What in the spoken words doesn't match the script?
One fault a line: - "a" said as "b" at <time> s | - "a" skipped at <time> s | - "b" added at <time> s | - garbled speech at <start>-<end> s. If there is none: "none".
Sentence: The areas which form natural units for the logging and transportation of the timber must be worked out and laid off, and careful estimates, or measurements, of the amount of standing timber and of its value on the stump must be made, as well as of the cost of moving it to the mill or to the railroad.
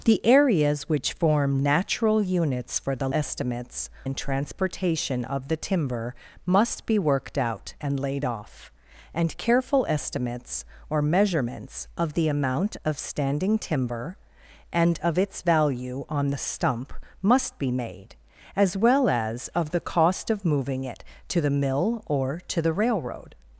- "logging" said as "estimates" at 3.1 s